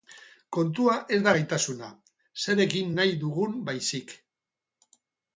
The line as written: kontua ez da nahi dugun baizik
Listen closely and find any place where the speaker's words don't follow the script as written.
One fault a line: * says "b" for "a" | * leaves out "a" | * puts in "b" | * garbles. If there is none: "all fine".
* puts in "gaitasuna zer egin"